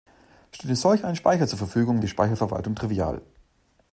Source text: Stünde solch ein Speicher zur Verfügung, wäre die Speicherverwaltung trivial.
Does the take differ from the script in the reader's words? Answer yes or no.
yes